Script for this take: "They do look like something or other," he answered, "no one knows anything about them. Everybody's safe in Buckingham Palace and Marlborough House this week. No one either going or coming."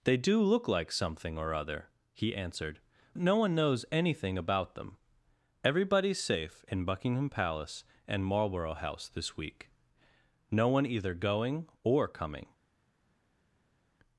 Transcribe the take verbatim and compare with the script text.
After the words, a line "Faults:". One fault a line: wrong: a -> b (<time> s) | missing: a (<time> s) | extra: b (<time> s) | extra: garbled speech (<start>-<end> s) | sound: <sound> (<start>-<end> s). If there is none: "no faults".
"They do look like something or other," he answered, "no one knows anything about them. Everybody's safe in Buckingham Palace and Marlborough House this week. No one either going or coming."
Faults:
no faults